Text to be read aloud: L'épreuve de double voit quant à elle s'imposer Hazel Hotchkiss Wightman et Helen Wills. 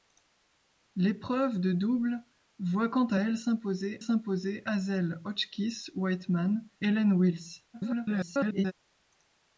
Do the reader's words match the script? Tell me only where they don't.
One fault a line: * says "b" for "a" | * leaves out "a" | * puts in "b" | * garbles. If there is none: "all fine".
* puts in "s'imposer"
* leaves out "et"
* garbles